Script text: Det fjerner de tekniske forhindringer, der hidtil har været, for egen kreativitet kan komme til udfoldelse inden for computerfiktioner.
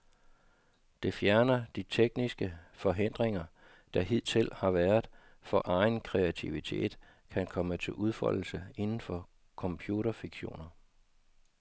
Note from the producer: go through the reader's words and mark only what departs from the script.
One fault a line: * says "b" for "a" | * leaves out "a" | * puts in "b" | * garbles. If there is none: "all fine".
all fine